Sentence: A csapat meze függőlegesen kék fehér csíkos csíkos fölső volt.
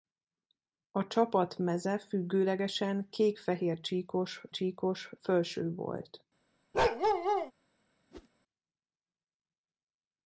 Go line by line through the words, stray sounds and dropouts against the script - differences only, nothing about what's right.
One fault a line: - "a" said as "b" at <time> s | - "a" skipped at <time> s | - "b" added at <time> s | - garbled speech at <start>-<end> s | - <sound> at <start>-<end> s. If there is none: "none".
- bark at 6.7-7.5 s
- whoosh at 8.1-8.3 s